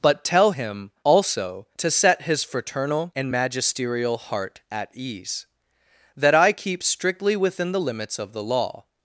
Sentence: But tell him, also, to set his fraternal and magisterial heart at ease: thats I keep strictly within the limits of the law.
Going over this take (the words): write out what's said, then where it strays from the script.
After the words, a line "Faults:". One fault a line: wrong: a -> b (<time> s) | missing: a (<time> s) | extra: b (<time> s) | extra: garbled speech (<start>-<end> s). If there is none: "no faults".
But tell him, also, to set his fraternal and magisterial heart at ease: that I keep strictly within the limits of the law.
Faults:
wrong: thats -> that (6.2 s)